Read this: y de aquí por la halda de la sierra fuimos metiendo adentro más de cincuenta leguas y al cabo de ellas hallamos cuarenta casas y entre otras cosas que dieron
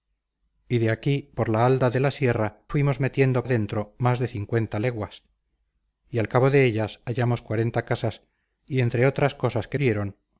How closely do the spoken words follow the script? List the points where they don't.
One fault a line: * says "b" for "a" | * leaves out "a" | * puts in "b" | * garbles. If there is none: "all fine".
all fine